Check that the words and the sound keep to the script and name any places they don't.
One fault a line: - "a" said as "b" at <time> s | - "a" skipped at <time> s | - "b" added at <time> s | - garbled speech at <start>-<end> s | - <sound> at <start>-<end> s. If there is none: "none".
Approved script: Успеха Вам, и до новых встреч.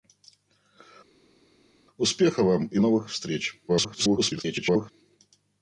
- "до" skipped at 2.8 s
- garbled speech at 3.7-4.9 s